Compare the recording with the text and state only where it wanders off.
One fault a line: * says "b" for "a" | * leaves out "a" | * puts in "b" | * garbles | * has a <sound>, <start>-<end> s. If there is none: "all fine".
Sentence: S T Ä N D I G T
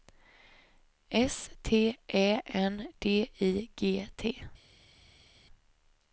all fine